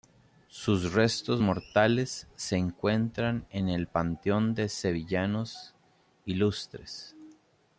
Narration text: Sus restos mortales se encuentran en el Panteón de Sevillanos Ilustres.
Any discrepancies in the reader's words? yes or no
no